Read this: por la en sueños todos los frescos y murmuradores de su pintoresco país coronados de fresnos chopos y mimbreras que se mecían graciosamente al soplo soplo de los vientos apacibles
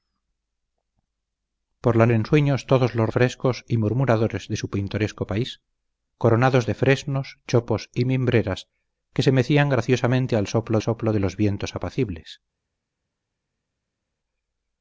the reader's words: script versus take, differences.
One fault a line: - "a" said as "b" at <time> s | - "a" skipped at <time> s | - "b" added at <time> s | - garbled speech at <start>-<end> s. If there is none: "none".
none